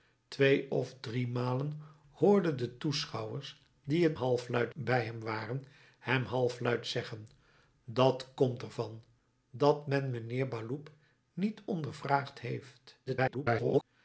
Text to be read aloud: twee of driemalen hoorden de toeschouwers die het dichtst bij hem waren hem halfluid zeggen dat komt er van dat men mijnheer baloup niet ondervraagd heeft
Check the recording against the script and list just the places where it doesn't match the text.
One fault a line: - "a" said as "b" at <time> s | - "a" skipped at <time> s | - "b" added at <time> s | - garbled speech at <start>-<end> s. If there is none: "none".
- "dichtst" said as "halfluid" at 4.1 s
- garbled speech at 13.1-13.8 s